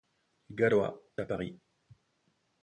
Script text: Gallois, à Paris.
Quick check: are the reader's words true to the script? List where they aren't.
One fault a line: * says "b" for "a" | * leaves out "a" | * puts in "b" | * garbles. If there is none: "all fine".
all fine